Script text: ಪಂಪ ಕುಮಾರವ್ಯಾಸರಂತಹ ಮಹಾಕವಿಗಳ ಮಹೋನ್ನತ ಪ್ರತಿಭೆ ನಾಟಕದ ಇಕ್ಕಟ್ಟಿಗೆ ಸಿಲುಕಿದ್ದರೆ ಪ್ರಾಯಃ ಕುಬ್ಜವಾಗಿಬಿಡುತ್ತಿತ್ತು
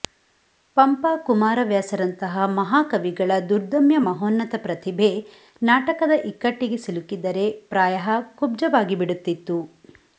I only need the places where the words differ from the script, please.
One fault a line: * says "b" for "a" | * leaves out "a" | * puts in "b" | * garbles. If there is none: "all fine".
* puts in "ದುರ್ದಮ್ಯ"